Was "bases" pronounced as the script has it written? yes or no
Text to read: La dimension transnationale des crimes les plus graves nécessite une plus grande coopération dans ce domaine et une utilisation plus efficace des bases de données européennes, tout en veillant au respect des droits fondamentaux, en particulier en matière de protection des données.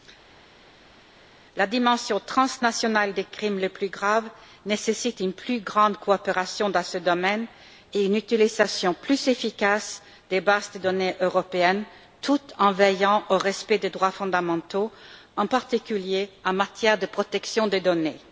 yes